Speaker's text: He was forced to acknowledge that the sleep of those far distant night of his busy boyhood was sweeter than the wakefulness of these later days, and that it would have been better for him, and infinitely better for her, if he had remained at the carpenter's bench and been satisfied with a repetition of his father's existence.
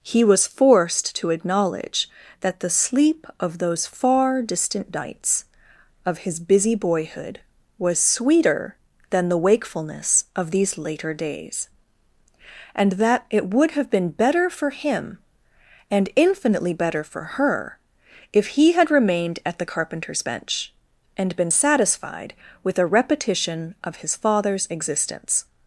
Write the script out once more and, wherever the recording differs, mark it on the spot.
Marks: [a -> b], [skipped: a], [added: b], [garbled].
He was forced to acknowledge that the sleep of those far distant [night -> nights] of his busy boyhood was sweeter than the wakefulness of these later days, and that it would have been better for him, and infinitely better for her, if he had remained at the carpenter's bench and been satisfied with a repetition of his father's existence.